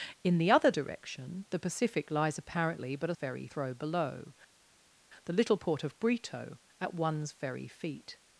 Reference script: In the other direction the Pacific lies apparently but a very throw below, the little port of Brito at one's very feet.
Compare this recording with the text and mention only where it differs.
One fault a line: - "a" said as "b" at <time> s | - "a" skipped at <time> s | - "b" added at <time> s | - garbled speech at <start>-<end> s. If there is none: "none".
none